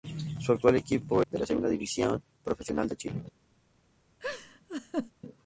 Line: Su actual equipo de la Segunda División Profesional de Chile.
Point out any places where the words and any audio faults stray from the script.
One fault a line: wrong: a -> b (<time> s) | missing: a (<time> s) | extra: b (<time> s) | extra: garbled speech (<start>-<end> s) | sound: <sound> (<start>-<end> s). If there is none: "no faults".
sound: laugh (4.2-5.1 s)